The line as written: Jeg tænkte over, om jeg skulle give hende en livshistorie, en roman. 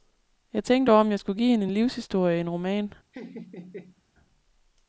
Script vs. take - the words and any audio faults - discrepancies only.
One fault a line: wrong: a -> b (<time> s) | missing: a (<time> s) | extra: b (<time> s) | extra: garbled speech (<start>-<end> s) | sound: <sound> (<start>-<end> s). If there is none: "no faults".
sound: laugh (3.1-4.0 s)